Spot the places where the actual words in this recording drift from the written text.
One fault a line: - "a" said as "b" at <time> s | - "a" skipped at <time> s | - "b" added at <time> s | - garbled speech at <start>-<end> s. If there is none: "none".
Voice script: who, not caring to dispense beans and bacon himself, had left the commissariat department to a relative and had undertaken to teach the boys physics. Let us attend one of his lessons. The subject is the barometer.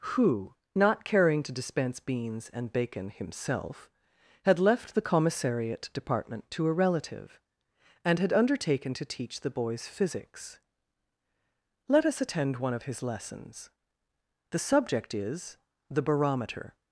none